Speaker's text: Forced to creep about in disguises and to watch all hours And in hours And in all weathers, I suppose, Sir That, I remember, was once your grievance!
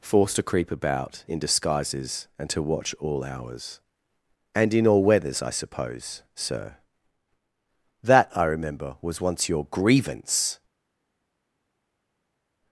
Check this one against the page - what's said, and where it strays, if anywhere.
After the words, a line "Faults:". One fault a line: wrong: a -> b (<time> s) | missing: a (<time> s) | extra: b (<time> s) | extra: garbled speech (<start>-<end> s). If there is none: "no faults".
Forced to creep about in disguises and to watch all hours And in all weathers, I suppose, Sir That, I remember, was once your grievance!
Faults:
missing: hours And in (4.9 s)